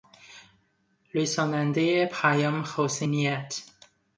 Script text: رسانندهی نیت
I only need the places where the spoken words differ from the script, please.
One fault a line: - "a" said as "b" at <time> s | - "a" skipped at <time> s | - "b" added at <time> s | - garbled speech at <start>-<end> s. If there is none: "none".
- "پیام حسن" added at 2.0 s